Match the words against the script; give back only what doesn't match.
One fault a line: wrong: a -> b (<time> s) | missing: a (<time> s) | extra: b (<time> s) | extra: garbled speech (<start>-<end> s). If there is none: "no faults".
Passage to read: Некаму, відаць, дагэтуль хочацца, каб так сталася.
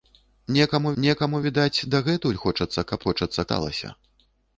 extra: некаму (1.0 s)
wrong: так -> хочацца (3.1 s)